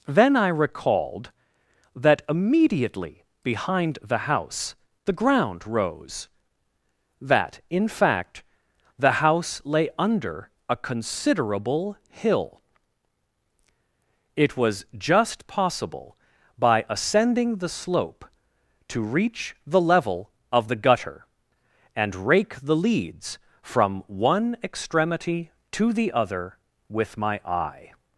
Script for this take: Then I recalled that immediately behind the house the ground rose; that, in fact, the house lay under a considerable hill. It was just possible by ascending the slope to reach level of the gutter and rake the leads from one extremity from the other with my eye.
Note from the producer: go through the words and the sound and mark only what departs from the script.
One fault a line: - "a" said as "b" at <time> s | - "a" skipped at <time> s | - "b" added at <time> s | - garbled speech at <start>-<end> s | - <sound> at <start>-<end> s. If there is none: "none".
- "the" added at 19.7 s
- "from" said as "to" at 25.7 s